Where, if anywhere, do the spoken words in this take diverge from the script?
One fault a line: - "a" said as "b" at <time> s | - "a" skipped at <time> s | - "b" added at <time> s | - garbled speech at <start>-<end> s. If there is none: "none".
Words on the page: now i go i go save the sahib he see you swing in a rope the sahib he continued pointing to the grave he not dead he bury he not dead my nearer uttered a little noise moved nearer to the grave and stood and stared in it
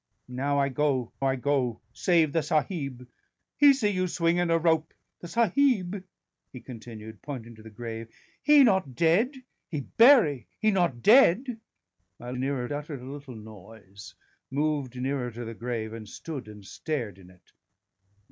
none